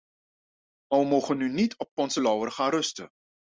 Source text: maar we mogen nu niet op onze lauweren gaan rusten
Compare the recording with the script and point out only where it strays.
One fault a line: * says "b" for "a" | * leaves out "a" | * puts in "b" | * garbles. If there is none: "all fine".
all fine